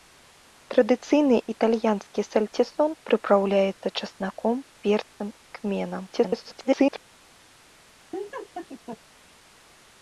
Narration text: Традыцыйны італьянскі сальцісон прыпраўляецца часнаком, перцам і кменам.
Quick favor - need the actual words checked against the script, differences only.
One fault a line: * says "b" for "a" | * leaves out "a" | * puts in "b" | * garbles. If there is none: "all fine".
* garbles